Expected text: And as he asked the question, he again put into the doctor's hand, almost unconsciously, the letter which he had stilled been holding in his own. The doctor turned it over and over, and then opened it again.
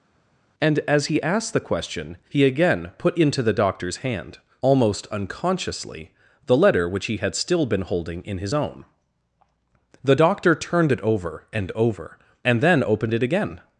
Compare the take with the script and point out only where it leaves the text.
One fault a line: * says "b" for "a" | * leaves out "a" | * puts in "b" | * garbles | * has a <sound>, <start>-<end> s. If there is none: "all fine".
* says "still" for "stilled"